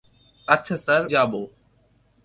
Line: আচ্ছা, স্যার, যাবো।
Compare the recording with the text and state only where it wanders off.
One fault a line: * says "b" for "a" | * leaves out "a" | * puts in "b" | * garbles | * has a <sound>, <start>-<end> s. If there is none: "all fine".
all fine